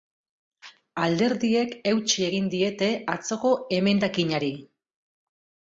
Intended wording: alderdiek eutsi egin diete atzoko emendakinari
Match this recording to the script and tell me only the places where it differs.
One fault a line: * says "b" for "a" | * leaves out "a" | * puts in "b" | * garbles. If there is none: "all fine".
all fine